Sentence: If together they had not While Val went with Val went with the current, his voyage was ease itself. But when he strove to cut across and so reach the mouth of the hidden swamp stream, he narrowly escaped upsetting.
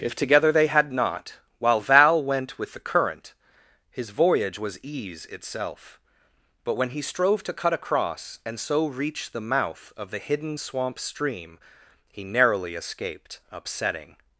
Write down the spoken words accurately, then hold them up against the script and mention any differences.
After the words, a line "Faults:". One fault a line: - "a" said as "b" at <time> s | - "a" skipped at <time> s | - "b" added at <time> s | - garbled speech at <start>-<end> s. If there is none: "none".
If together they had not While Val went with the current, his voyage was ease itself. But when he strove to cut across and so reach the mouth of the hidden swamp stream, he narrowly escaped upsetting.
Faults:
- "Val went with" skipped at 2.7 s